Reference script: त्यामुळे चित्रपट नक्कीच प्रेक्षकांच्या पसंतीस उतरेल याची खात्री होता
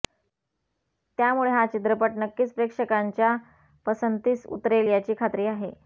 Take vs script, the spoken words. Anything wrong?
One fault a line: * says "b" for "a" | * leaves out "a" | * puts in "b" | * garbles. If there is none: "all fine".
* puts in "हा"
* says "आहे" for "होता"